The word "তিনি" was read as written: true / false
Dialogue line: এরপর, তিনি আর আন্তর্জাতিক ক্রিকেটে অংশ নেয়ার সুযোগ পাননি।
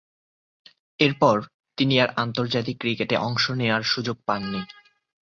true